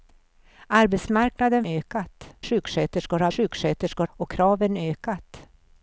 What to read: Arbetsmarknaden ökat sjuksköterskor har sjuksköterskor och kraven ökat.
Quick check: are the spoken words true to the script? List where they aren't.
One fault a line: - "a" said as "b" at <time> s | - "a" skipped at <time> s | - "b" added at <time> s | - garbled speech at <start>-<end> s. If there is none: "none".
none